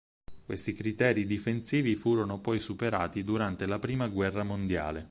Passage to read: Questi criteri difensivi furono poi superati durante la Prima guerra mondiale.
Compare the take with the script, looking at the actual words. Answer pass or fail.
pass